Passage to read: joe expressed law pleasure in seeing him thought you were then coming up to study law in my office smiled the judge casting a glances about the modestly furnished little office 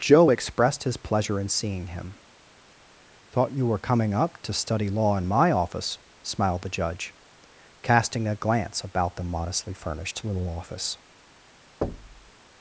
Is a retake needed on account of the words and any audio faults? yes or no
yes